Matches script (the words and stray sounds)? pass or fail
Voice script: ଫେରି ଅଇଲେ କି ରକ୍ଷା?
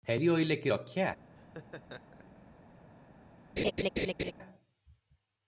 fail